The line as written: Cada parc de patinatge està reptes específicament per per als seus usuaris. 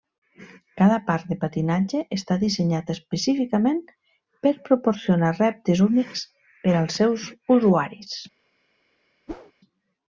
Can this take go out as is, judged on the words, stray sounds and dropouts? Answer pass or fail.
fail